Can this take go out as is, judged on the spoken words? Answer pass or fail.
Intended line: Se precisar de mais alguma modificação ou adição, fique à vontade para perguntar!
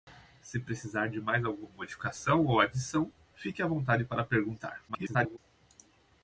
fail